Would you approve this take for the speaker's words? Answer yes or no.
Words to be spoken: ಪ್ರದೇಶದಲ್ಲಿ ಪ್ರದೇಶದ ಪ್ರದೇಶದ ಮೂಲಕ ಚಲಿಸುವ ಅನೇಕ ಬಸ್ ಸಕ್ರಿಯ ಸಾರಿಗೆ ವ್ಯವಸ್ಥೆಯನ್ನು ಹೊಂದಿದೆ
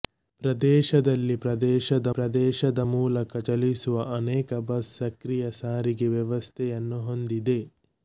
yes